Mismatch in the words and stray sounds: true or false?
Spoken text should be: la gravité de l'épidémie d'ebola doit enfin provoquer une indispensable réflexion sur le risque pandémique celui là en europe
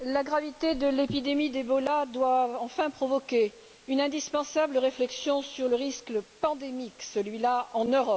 false